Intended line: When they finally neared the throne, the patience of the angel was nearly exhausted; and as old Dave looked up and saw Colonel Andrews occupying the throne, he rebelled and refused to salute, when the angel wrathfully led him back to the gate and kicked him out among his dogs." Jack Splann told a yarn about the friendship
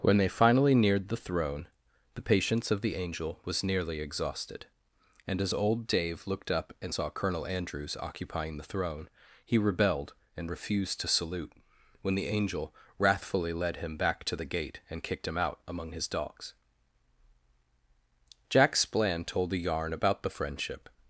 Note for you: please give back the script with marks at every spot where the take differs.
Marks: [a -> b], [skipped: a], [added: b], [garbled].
When they finally neared the throne, the patience of the angel was nearly exhausted; and as old Dave looked up and saw Colonel Andrews occupying the throne, he rebelled and refused to salute, when the angel wrathfully led him back to the gate and kicked him out among his dogs." Jack Splann told a yarn about the friendship